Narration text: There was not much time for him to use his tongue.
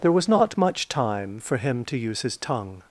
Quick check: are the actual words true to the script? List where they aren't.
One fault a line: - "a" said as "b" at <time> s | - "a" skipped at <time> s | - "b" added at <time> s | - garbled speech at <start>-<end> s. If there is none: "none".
none